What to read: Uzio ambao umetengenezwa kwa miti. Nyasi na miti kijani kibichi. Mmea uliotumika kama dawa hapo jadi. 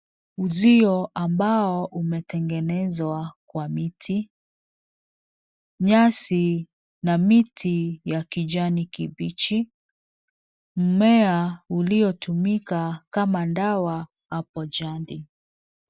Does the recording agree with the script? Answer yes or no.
no